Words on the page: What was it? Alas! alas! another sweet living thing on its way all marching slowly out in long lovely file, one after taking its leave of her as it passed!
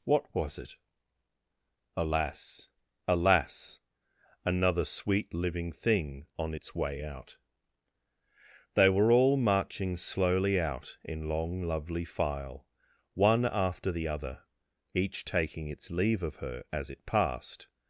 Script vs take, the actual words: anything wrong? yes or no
yes